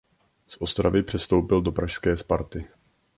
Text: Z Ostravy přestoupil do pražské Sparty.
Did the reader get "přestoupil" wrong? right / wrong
right